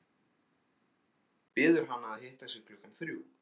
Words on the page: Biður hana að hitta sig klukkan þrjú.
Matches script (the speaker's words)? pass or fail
pass